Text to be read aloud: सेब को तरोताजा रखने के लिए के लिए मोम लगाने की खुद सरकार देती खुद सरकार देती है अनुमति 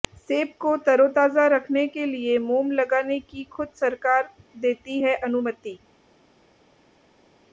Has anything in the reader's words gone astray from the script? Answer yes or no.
yes